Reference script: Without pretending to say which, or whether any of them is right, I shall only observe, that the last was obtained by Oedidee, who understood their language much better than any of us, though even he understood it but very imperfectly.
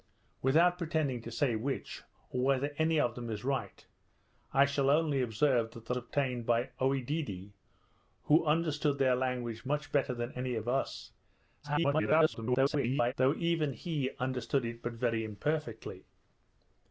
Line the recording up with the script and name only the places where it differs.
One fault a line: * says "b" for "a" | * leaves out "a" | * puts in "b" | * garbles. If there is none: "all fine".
* leaves out "last was"
* garbles